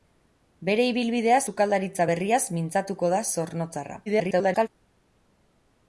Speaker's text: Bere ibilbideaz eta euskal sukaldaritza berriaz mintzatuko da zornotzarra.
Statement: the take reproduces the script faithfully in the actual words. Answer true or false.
false